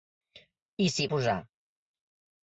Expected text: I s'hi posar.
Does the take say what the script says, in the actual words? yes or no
yes